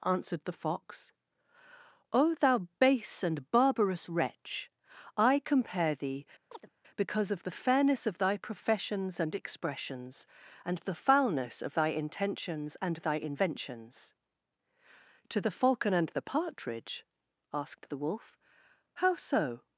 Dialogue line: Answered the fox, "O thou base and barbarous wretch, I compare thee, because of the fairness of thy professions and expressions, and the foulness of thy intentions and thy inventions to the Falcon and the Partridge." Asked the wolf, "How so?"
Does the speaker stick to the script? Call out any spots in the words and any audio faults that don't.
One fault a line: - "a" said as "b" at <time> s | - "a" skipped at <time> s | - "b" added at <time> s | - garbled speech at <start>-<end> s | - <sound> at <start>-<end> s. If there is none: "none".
- chirp at 6.5-6.7 s